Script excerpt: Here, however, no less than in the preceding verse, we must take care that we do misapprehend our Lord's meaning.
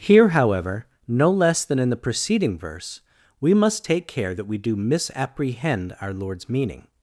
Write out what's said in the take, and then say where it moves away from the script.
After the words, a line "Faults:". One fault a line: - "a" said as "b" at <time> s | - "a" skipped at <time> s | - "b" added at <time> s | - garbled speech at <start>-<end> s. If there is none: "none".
Here, however, no less than in the preceding verse, we must take care that we do misapprehend our Lord's meaning.
Faults:
none